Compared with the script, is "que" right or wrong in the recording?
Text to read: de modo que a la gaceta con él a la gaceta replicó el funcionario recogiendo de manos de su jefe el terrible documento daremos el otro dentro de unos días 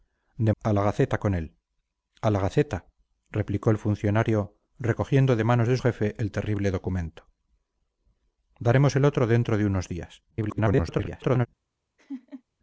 wrong